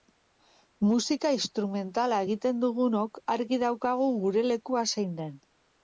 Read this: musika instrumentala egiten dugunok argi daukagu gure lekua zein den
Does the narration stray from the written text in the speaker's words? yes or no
no